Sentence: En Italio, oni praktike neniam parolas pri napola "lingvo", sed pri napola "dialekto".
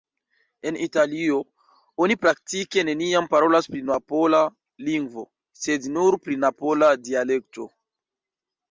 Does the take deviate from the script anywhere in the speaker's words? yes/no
yes